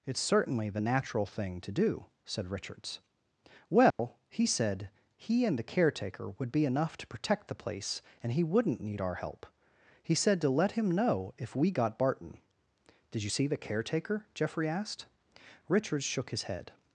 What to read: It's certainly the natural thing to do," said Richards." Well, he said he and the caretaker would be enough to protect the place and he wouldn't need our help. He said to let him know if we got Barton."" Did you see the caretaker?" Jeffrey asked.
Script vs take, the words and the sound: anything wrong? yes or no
yes